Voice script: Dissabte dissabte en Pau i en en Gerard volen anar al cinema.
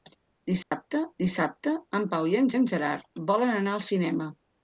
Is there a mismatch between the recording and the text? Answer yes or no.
no